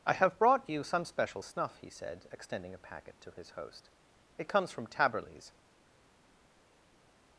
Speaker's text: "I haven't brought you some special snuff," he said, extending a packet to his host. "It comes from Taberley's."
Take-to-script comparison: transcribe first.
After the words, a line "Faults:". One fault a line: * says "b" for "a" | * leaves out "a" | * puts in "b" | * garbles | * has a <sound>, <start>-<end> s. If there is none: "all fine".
"I have brought you some special snuff," he said, extending a packet to his host. "It comes from Taberley's."
Faults:
* says "have" for "haven't"